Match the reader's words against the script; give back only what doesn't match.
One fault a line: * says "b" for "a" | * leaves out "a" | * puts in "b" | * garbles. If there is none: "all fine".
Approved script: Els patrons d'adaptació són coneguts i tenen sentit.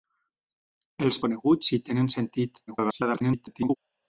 * leaves out "patrons d'adaptació són"
* garbles